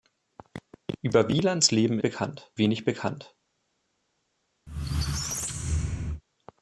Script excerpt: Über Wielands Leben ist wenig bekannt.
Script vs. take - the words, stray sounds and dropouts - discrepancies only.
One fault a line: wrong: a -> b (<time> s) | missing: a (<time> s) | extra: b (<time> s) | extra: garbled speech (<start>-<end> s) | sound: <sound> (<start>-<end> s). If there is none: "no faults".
wrong: ist -> bekannt (2.0 s)
sound: squeak (4.7-6.2 s)